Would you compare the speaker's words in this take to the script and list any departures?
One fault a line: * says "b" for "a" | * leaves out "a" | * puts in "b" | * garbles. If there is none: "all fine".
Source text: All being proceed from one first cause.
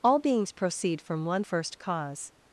* says "beings" for "being"